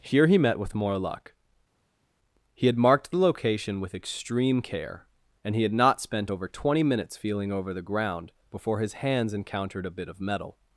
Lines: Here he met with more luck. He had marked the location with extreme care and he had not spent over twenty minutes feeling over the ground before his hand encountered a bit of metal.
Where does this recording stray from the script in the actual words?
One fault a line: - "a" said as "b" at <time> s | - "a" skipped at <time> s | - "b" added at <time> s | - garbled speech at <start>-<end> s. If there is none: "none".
- "hand" said as "hands" at 8.9 s